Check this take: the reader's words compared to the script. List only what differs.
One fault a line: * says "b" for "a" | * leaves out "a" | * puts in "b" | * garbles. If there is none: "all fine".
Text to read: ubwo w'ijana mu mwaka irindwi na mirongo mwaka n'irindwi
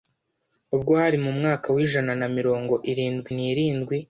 * says "hari" for "w'ijana"
* says "w'ijana" for "irindwi"
* says "irindwi" for "mwaka"